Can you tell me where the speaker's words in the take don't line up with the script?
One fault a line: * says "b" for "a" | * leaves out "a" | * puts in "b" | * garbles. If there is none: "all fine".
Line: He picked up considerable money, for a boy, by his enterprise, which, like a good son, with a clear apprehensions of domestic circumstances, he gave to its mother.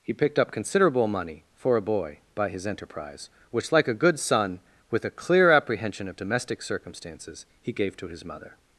* says "apprehension" for "apprehensions"
* says "his" for "its"